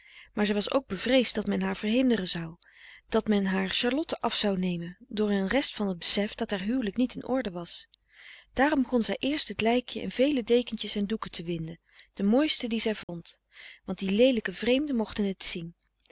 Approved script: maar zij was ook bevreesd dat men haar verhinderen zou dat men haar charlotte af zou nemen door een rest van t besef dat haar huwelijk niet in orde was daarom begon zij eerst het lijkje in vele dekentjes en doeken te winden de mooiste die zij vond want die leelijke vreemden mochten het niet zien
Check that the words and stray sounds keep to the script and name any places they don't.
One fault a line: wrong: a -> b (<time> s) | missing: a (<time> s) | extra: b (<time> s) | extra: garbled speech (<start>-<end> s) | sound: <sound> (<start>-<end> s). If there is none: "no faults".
sound: dropout (13.0-13.1 s)
missing: niet (15.4 s)